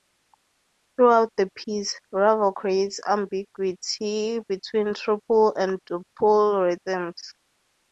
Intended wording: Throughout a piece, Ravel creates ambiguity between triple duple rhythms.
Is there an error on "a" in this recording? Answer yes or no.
yes